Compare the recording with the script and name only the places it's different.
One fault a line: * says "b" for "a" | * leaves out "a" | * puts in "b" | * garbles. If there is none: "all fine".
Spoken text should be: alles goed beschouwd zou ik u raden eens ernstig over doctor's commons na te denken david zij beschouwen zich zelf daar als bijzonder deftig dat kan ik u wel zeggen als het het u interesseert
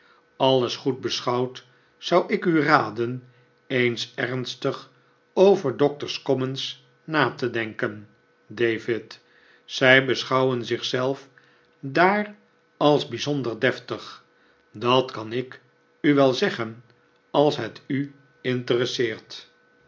* leaves out "het"